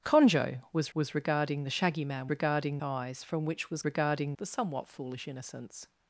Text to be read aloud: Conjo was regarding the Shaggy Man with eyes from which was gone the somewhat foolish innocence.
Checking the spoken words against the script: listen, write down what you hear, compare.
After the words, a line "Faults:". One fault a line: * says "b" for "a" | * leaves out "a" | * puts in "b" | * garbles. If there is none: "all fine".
Conjo was was regarding the Shaggy Man regarding eyes from which was regarding the somewhat foolish innocence.
Faults:
* puts in "was"
* says "regarding" for "with"
* says "regarding" for "gone"